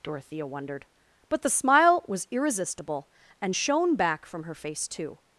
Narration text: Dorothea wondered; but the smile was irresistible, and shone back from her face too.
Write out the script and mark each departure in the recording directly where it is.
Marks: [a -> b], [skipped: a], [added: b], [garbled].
Dorothea wondered; but the smile was irresistible, and shone back from her face too.